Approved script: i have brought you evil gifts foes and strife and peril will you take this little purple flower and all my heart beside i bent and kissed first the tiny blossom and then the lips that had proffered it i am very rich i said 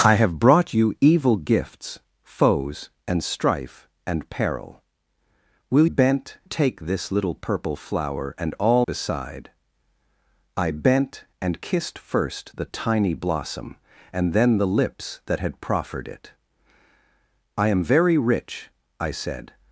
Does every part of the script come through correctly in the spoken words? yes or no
no